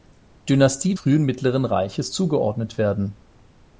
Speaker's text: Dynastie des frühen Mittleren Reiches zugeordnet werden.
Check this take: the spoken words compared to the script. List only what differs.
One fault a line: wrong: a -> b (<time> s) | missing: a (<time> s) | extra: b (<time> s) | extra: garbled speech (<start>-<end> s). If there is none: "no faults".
missing: des (0.9 s)